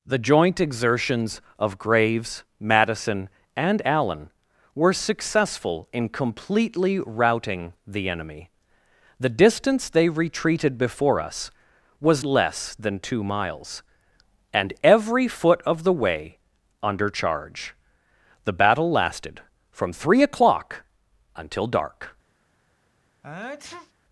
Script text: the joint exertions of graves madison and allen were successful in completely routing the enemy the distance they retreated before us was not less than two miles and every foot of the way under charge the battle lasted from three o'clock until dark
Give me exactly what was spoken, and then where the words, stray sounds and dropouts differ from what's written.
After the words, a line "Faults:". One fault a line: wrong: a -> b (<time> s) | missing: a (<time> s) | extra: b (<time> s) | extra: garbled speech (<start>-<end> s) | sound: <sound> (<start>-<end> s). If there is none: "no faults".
the joint exertions of graves madison and allen were successful in completely routing the enemy the distance they retreated before us was less than two miles and every foot of the way under charge the battle lasted from three o'clock until dark
Faults:
missing: not (12.2 s)
sound: sneeze (23.2-23.9 s)